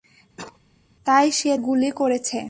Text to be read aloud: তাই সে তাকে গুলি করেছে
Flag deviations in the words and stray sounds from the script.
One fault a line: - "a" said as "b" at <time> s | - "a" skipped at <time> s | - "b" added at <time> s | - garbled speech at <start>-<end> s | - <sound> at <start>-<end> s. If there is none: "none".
- cough at 0.4-0.6 s
- "তাকে" skipped at 1.5 s